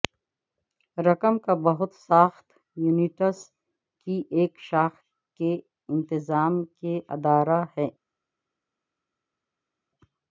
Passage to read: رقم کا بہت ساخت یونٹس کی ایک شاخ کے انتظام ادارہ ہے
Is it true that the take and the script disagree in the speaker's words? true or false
true